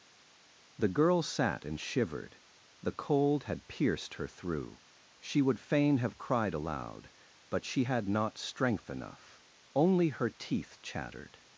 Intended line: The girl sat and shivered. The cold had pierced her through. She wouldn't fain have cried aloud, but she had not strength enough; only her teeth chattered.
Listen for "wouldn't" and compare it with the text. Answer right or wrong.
wrong